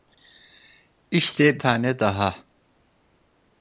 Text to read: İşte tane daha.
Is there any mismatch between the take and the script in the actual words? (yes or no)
no